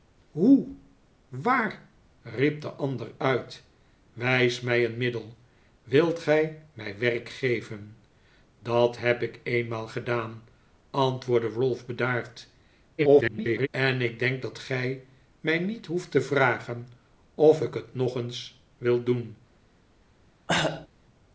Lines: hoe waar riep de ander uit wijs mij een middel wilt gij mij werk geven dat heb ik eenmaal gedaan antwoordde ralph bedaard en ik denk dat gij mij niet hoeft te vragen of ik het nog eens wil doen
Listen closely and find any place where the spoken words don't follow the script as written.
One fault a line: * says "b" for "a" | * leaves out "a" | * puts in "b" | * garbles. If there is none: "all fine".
* garbles